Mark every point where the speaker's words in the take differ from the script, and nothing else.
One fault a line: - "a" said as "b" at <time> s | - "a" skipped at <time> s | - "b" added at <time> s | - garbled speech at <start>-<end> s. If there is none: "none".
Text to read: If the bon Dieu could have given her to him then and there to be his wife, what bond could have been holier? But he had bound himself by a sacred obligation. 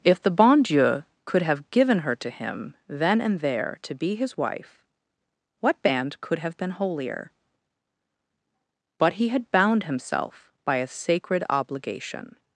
- "bond" said as "band" at 5.8 s